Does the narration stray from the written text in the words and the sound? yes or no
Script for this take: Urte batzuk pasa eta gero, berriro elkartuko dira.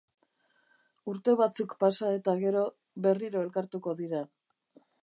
no